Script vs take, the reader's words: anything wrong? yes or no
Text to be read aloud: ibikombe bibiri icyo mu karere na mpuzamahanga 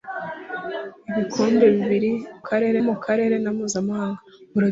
yes